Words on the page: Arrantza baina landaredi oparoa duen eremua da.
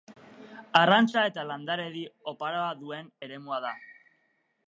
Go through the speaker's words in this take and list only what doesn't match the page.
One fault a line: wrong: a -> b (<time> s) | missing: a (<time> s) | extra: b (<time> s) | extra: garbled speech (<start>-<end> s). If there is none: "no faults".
wrong: baina -> eta (1.3 s)